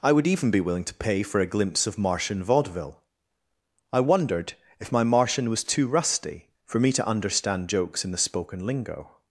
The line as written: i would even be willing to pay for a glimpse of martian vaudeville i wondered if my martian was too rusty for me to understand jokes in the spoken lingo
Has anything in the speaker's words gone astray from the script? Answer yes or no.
no